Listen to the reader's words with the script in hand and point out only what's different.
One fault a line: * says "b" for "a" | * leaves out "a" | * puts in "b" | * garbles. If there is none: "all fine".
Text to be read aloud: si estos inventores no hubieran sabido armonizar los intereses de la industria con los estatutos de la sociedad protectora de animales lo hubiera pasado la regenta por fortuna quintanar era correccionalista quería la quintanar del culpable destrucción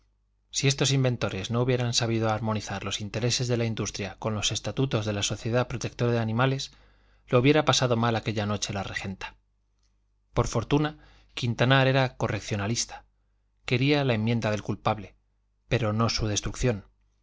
* puts in "mal aquella noche"
* says "enmienda" for "quintanar"
* puts in "pero no su"